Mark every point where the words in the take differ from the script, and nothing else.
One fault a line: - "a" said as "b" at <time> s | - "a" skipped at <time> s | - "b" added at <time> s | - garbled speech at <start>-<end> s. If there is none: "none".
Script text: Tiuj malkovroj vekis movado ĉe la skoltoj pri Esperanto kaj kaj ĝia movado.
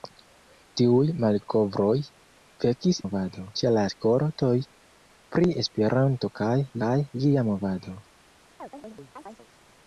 none